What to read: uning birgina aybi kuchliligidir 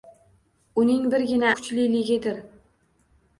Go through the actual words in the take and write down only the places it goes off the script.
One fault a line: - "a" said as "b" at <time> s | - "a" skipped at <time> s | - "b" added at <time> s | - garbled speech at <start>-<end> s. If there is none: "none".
- "aybi" skipped at 1.5 s